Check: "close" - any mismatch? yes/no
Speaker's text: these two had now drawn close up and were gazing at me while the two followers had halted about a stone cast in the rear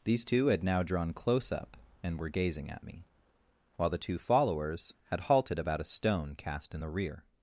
no